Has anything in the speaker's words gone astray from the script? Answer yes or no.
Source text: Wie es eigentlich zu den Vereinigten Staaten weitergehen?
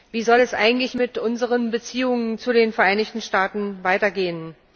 yes